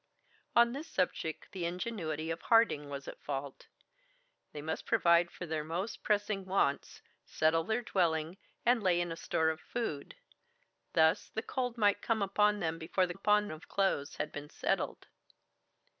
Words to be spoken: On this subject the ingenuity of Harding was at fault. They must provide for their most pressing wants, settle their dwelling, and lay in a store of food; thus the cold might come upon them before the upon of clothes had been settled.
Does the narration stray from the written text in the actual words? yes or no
no